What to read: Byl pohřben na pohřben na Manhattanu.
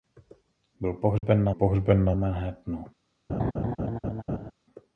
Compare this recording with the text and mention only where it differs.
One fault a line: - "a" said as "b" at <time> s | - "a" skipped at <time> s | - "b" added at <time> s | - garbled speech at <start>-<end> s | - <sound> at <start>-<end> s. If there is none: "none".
- dropout at 1.2-1.2 s
- laugh at 3.3-4.5 s